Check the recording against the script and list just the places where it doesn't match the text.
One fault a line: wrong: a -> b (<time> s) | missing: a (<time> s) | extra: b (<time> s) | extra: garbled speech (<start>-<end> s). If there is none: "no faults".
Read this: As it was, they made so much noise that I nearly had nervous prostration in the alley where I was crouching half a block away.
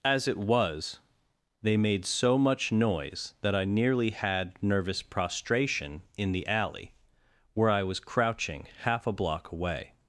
no faults